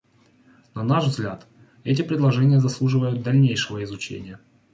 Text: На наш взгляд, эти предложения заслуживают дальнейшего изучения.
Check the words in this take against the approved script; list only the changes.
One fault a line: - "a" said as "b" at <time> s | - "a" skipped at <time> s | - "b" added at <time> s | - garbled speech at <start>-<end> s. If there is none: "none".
none